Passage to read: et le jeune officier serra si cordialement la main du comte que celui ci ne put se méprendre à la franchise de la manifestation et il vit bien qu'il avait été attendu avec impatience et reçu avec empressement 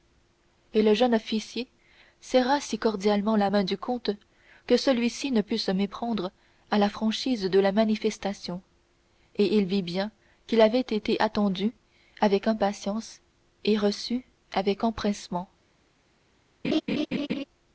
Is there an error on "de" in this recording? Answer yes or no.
no